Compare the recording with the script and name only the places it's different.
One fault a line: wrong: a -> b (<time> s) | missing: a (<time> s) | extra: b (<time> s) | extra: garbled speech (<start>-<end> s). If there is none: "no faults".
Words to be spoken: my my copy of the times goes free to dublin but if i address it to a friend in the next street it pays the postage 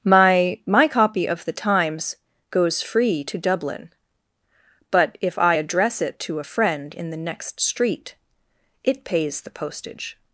no faults